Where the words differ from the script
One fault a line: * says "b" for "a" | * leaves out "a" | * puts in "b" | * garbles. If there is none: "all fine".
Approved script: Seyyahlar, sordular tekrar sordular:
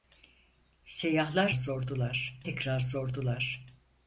all fine